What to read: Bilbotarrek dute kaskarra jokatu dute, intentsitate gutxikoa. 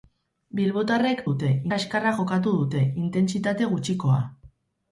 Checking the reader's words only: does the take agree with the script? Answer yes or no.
yes